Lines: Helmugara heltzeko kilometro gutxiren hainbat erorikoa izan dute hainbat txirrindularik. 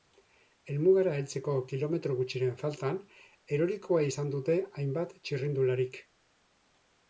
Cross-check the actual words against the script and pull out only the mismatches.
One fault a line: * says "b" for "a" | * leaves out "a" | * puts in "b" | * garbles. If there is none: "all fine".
* says "faltan" for "hainbat"